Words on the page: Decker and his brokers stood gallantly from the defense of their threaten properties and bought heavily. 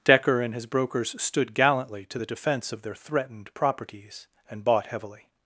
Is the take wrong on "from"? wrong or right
wrong